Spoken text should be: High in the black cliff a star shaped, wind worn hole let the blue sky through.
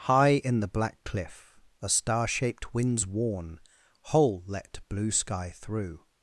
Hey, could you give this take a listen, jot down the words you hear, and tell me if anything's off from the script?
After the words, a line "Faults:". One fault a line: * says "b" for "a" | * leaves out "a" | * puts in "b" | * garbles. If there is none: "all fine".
High in the black cliff a star shaped, winds worn hole let blue sky through.
Faults:
* says "winds" for "wind"
* leaves out "the"